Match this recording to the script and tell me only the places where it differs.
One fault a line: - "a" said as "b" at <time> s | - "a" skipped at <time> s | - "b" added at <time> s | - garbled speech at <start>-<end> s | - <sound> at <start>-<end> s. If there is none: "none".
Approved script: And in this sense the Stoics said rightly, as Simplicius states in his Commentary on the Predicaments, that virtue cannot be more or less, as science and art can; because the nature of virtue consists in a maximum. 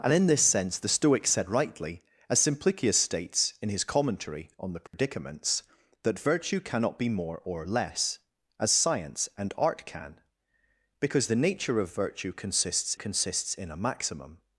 - dropout at 4.9-4.9 s
- "consists" added at 12.9 s